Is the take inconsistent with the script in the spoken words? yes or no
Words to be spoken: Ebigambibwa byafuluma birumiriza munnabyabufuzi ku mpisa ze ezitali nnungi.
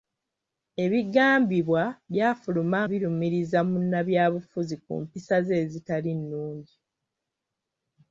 no